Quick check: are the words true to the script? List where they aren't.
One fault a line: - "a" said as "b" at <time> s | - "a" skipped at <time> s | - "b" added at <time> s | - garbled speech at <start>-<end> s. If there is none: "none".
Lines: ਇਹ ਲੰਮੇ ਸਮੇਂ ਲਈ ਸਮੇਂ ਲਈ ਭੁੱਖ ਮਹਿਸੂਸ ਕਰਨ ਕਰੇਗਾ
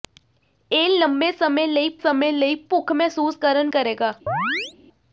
none